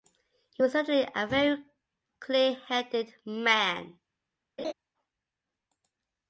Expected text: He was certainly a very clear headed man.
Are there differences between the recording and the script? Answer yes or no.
no